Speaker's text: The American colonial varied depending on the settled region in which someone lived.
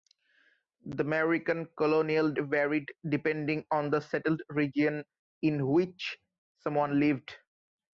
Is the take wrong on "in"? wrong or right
right